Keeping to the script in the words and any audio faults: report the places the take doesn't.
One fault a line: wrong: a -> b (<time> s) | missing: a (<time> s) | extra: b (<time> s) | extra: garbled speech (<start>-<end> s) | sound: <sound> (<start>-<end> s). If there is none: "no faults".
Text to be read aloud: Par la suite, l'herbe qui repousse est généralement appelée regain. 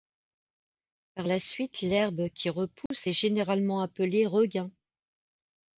sound: dropout (2.9-2.9 s)